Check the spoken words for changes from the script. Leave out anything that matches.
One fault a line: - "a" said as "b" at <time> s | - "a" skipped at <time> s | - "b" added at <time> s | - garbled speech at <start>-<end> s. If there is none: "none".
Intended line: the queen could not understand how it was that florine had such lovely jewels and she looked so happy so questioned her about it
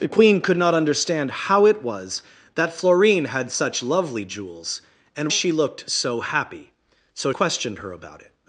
none